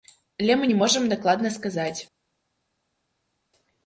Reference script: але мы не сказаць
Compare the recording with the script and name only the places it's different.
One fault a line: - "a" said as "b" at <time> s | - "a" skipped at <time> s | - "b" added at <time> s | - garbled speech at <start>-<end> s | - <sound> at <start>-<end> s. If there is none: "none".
- "можам дакладна" added at 0.8 s